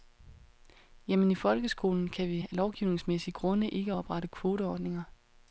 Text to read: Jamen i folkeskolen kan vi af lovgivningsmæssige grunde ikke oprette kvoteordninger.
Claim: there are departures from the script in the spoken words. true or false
false